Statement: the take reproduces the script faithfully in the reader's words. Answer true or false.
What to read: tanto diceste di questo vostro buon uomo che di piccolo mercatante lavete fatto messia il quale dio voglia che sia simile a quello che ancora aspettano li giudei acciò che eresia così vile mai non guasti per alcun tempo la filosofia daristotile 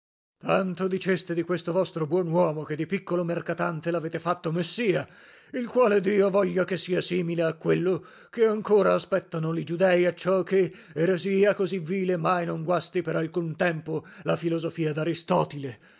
true